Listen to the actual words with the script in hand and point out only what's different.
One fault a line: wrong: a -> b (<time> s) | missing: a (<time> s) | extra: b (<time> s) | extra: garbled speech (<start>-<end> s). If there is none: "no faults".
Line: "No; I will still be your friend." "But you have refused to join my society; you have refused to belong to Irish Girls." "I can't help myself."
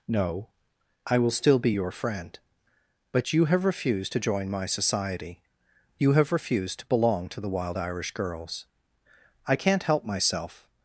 extra: the Wild (7.4 s)